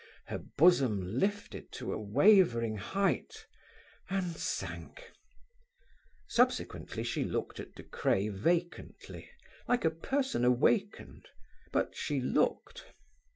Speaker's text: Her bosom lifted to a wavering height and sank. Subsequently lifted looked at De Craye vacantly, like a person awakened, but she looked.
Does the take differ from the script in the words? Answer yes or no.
yes